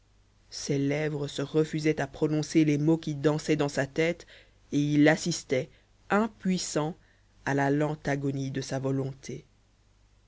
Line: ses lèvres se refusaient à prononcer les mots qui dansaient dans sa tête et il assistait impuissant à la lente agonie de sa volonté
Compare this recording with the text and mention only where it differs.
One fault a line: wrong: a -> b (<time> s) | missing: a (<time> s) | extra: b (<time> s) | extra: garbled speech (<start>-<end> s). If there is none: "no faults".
no faults